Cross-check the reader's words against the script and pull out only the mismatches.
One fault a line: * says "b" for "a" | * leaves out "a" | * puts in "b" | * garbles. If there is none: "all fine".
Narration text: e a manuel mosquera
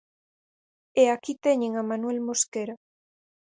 * puts in "aquí teñen"